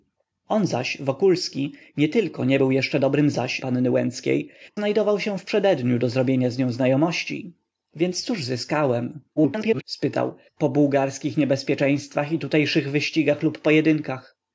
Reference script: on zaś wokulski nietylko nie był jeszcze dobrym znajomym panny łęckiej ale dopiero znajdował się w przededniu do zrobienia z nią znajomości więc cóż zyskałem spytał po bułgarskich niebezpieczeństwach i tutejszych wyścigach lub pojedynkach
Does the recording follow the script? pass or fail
fail